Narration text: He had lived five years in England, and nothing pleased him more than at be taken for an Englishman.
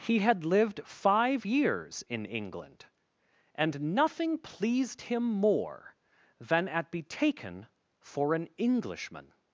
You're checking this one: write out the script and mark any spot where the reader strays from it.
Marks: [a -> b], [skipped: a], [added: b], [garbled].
He had lived five years in England, and nothing pleased him more than at be taken for an Englishman.